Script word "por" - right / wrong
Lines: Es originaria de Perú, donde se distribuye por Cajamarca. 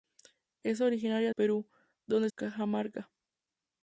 wrong